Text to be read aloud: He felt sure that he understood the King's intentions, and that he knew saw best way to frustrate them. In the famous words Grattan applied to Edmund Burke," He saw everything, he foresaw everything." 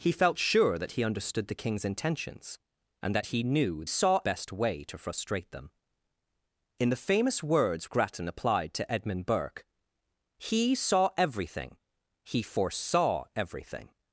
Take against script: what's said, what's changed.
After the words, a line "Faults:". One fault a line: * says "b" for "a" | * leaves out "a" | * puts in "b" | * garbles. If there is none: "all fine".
He felt sure that he understood the King's intentions, and that he knew saw best way to frustrate them. In the famous words Grattan applied to Edmund Burke," He saw everything, he foresaw everything."
Faults:
all fine